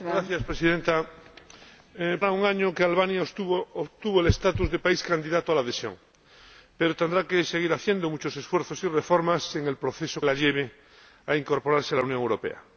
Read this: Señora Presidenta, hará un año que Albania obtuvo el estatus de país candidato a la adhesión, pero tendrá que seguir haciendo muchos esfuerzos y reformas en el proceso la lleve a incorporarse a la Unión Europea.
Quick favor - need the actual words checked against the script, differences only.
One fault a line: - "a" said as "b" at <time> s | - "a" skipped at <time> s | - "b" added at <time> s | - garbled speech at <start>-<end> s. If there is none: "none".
none